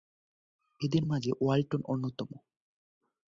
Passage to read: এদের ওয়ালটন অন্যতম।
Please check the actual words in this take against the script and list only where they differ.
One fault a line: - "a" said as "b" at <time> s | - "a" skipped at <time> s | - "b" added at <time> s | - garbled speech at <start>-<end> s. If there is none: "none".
- "মাঝে" added at 1.0 s